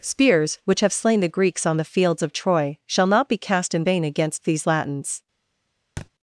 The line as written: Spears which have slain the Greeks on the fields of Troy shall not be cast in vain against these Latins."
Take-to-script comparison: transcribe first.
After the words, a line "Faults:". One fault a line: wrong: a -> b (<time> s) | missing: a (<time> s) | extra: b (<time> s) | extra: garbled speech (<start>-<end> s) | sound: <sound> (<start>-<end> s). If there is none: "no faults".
Spears which have slain the Greeks on the fields of Troy shall not be cast in vain against these Latins."
Faults:
sound: thud (6.0-6.1 s)